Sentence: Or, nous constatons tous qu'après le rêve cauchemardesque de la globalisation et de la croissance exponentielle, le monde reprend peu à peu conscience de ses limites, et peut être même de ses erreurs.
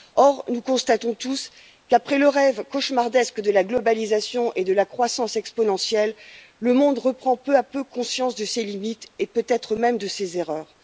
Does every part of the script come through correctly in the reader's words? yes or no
yes